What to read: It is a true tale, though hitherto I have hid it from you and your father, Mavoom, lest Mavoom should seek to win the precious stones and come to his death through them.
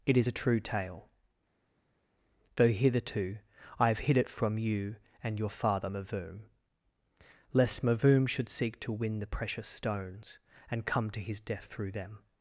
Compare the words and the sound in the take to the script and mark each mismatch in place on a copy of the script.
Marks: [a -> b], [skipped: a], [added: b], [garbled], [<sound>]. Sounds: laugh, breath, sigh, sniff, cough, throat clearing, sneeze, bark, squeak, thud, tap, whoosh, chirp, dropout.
It is a true tale, though hitherto I have hid it from you and your father, Mavoom, lest Mavoom should seek to win the precious stones and come to his death through them.